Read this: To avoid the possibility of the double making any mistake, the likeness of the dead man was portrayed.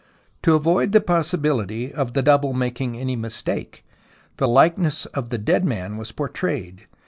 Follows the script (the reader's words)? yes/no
yes